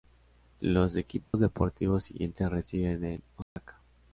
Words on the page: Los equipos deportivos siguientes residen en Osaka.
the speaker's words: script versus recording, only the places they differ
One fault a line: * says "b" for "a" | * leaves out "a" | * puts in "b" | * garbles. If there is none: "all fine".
all fine